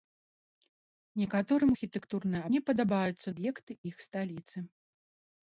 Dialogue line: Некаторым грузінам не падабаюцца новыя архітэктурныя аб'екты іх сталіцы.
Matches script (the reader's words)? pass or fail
fail